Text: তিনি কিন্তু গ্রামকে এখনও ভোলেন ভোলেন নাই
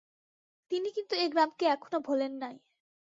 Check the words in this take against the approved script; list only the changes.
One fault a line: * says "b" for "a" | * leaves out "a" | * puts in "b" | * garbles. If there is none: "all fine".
* puts in "এ"
* leaves out "ভোলেন"